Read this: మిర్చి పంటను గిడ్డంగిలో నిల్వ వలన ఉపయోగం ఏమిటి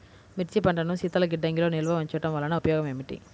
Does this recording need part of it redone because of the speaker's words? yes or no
yes